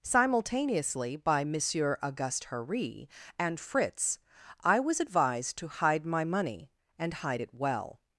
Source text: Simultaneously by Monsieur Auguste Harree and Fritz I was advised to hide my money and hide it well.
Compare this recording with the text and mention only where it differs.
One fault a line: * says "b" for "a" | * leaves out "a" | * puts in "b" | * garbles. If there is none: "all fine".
all fine